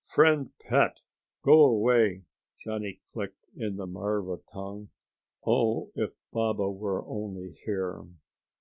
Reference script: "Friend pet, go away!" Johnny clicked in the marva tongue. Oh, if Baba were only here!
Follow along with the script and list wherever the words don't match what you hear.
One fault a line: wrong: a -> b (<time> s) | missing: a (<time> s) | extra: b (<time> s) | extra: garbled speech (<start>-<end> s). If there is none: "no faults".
no faults